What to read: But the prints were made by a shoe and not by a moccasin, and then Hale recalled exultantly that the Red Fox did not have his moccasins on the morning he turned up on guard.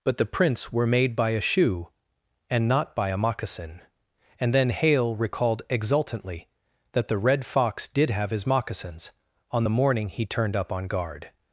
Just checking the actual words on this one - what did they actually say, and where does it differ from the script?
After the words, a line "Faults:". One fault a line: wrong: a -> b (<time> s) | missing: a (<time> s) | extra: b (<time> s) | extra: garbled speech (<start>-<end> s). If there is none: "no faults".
But the prints were made by a shoe and not by a moccasin, and then Hale recalled exultantly that the Red Fox did have his moccasins on the morning he turned up on guard.
Faults:
missing: not (8.1 s)